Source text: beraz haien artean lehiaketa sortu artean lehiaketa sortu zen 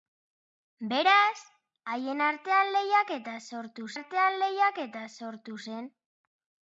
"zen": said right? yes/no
yes